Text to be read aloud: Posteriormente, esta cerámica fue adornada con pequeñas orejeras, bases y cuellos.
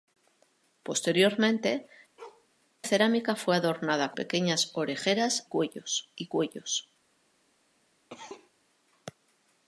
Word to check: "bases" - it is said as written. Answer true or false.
false